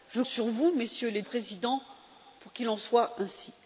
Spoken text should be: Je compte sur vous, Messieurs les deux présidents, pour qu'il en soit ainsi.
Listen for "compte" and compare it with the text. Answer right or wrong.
wrong